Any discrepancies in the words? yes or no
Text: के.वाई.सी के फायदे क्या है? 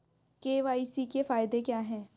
no